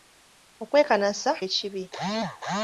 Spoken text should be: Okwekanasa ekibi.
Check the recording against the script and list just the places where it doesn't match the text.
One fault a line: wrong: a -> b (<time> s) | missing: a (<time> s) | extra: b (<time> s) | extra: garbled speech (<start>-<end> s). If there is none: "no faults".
no faults